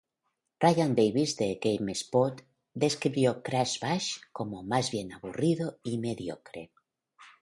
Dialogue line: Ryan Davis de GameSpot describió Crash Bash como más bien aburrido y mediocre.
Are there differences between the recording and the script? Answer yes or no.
no